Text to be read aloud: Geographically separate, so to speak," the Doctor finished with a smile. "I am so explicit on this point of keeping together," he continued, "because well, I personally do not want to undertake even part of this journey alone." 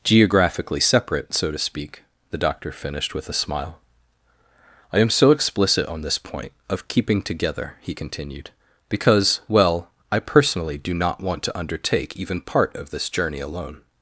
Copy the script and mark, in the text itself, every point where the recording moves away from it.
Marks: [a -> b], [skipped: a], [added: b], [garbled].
Geographically separate, so to speak," the Doctor finished with a smile. "I am so explicit on this point of keeping together," he continued, "because well, I personally do not want to undertake even part of this journey alone."